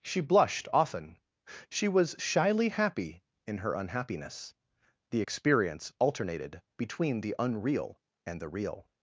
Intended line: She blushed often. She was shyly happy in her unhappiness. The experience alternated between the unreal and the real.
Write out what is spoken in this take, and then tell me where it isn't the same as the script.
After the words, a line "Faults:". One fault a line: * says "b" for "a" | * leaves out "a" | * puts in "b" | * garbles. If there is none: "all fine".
She blushed often. She was shyly happy in her unhappiness. The experience alternated between the unreal and the real.
Faults:
all fine